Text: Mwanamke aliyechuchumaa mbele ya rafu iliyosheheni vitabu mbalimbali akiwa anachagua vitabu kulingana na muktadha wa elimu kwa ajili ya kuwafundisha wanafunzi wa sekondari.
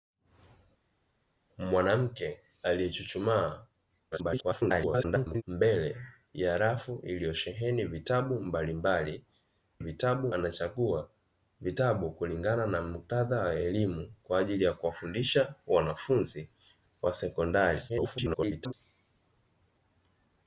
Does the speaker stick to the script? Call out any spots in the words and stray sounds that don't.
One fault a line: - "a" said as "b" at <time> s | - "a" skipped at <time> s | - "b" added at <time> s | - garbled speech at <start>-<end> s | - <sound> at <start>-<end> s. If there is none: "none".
- garbled speech at 4.1-5.4 s
- "akiwa" said as "vitabu" at 9.8 s
- garbled speech at 17.9-18.7 s